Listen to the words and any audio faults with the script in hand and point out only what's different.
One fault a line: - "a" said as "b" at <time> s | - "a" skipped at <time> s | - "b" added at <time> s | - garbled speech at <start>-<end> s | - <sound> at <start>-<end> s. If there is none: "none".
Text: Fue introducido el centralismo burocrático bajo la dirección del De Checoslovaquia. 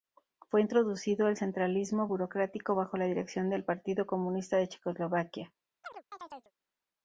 - "Partido Comunista" added at 3.6 s
- chirp at 5.8-6.5 s